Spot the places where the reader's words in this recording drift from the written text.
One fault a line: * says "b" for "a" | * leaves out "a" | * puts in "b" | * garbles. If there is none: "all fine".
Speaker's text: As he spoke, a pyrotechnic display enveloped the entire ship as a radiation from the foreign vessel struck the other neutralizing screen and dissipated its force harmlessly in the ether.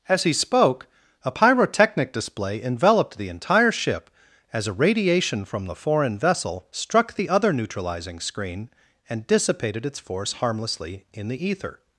all fine